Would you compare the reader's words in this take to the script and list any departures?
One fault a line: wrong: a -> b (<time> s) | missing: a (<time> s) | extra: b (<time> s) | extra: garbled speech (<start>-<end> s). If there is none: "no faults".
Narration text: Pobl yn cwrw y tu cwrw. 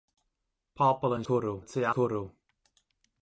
no faults